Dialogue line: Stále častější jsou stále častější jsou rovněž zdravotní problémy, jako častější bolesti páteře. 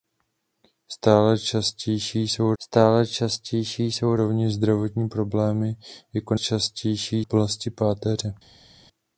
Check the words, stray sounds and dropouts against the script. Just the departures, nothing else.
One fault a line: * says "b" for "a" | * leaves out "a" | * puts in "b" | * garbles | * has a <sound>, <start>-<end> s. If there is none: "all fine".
all fine